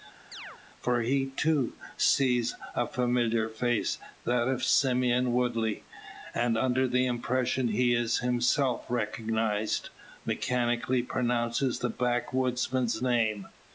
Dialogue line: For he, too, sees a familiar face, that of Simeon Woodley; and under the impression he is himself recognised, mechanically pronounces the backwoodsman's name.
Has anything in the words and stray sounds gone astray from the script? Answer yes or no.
yes